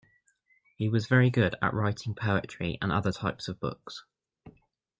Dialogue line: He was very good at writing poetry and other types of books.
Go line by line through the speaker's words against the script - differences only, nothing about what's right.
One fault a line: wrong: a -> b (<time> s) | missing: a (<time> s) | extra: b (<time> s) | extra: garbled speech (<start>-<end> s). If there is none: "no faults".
no faults